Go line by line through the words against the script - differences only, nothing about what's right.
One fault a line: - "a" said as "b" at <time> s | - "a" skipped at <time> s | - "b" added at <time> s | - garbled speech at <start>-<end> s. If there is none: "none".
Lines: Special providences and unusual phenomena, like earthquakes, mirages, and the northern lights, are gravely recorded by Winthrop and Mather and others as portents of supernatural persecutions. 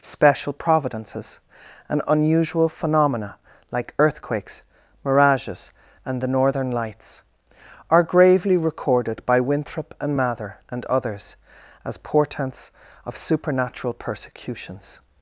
none